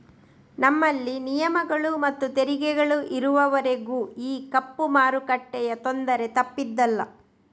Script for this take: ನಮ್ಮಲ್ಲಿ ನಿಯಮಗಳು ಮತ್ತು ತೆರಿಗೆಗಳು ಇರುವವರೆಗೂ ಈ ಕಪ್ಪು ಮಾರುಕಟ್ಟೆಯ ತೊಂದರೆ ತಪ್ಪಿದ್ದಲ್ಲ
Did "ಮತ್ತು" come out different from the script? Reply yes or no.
no